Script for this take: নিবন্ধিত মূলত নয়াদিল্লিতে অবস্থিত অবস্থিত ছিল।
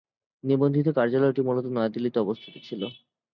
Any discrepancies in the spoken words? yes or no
yes